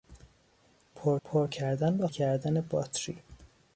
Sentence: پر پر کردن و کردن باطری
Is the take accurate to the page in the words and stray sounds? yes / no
yes